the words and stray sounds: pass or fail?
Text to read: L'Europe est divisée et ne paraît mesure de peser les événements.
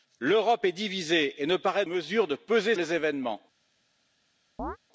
fail